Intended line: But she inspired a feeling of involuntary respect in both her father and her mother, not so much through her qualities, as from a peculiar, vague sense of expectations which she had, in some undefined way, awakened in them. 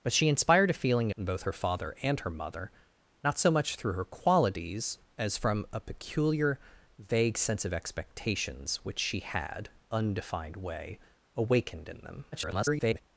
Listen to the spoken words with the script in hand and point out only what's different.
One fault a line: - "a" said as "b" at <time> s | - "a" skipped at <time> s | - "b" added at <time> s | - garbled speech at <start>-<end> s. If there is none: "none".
- "of involuntary respect" skipped at 1.1 s
- "in some" skipped at 9.7 s
- garbled speech at 12.3-13.0 s